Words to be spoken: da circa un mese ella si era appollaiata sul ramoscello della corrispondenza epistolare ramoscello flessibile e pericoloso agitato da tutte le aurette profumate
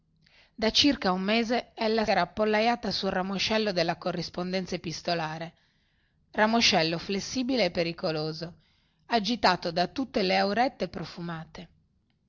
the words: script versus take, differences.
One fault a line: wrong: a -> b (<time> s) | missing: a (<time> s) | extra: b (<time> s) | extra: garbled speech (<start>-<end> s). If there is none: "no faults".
missing: si (2.0 s)